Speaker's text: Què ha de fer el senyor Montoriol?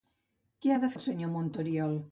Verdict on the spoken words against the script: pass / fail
fail